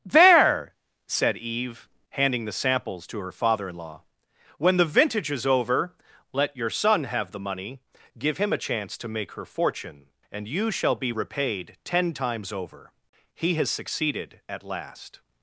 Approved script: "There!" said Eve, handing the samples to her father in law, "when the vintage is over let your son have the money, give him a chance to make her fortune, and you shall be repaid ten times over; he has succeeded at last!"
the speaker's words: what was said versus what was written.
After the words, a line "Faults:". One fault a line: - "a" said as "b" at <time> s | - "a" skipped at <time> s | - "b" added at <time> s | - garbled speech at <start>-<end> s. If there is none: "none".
"There!" said Eve, handing the samples to her father in law, "when the vintage is over let your son have the money, give him a chance to make her fortune, and you shall be repaid ten times over; he has succeeded at last!"
Faults:
none